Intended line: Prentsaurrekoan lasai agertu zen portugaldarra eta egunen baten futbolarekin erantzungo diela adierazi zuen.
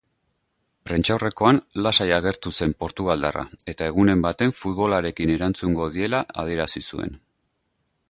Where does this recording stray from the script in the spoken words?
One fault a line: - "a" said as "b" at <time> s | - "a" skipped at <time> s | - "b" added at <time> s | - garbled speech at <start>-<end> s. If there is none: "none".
none